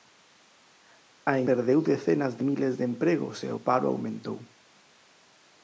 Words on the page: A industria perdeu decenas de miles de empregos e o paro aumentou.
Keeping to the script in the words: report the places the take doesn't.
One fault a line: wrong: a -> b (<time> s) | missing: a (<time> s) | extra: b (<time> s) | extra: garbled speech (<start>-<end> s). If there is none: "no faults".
missing: industria (1.4 s)